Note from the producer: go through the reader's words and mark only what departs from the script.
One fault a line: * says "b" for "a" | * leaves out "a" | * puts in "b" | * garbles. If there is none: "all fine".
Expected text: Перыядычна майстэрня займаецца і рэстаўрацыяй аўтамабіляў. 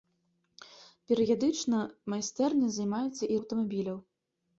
* leaves out "рэстаўрацыяй"